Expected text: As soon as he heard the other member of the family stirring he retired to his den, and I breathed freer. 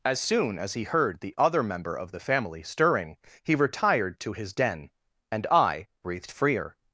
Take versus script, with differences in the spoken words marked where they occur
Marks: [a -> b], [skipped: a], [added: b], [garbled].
As soon as he heard the other member of the family stirring he retired to his den, and I breathed freer.